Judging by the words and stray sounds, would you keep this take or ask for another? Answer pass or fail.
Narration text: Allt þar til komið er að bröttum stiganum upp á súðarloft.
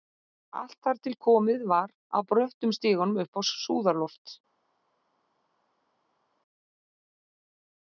fail